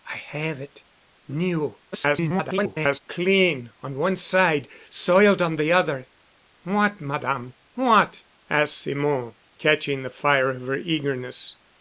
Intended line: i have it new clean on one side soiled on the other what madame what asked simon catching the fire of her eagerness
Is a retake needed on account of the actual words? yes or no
yes